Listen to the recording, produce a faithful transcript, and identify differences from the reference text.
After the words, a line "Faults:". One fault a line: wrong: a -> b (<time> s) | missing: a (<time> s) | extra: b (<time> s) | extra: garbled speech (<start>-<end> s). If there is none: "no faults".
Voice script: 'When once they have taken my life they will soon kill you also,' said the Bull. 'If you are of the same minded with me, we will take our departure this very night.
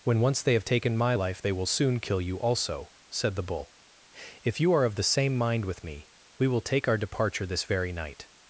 'When once they have taken my life they will soon kill you also,' said the Bull. 'If you are of the same mind with me, we will take our departure this very night.
Faults:
wrong: minded -> mind (5.4 s)